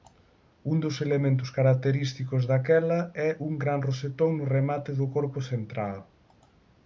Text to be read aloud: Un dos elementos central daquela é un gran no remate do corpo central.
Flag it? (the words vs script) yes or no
yes